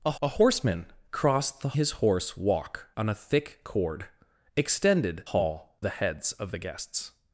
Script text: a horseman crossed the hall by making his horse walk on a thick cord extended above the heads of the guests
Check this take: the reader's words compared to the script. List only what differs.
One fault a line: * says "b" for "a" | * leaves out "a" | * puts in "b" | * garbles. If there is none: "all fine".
* puts in "a"
* leaves out "hall by making"
* says "hall" for "above"